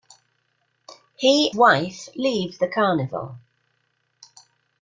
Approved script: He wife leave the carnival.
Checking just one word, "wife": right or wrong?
right